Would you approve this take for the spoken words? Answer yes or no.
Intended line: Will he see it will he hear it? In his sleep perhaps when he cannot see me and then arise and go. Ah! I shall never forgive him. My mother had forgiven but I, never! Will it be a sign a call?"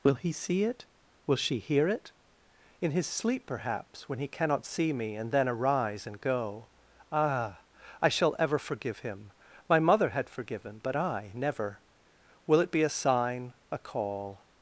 no